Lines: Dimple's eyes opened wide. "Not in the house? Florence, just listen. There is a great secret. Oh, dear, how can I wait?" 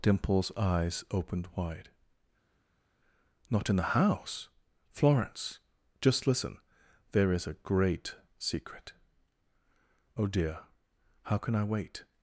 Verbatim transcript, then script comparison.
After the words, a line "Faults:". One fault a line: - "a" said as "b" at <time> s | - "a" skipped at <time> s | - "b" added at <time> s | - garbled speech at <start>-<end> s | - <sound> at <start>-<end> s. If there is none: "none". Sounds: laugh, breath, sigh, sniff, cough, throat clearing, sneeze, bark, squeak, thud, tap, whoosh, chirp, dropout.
Dimple's eyes opened wide. "Not in the house? Florence, just listen. There is a great secret. Oh, dear, how can I wait?"
Faults:
none